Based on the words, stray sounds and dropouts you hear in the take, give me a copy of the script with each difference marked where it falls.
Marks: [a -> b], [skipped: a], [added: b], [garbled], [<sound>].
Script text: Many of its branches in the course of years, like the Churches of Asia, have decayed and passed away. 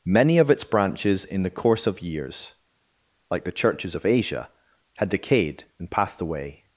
Many of its branches in the course of years, like the Churches of Asia, [have -> had] decayed and passed away.